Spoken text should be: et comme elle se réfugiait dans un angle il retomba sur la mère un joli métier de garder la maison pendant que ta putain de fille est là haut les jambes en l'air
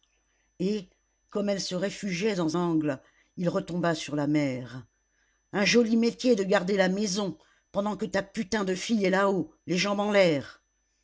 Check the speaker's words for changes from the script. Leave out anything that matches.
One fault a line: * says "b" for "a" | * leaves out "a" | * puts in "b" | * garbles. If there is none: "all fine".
* leaves out "un"